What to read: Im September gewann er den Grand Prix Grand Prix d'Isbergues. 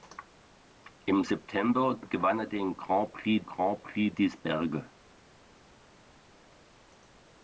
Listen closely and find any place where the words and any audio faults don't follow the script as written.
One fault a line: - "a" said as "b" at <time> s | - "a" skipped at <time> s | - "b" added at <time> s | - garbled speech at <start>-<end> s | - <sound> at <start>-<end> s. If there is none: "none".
none